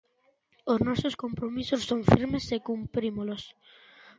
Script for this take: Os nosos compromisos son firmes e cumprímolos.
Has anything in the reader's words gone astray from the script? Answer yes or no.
no